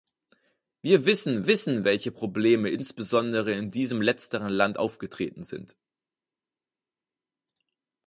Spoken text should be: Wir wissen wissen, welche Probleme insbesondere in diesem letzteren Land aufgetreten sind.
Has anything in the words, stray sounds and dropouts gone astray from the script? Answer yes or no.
no